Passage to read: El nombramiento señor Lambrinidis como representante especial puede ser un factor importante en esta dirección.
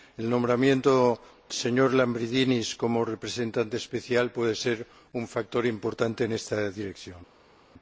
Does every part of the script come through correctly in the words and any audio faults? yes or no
yes